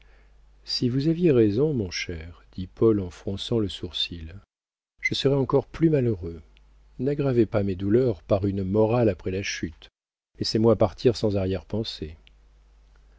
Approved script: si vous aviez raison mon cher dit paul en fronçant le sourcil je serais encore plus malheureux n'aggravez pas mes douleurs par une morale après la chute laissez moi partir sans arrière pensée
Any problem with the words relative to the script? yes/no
no